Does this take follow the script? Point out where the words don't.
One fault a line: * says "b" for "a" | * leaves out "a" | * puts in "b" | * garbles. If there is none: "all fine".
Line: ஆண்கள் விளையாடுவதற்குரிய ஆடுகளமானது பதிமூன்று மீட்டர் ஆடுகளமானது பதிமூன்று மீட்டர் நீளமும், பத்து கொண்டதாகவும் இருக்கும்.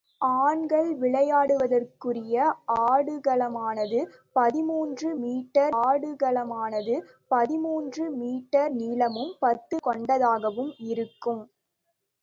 all fine